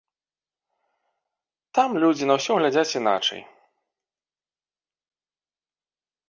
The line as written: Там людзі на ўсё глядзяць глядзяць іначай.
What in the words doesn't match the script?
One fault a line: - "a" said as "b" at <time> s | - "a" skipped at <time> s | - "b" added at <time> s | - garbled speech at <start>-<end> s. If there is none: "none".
- "глядзяць" skipped at 3.0 s